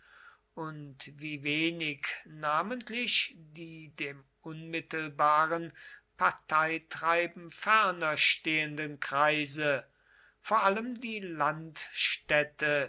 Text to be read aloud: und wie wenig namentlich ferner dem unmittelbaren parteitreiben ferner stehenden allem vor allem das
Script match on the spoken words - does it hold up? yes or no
no